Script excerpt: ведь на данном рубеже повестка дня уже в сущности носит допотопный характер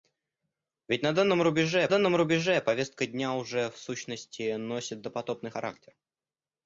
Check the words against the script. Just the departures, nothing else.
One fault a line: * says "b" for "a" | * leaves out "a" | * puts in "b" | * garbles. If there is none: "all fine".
* puts in "данном рубеже"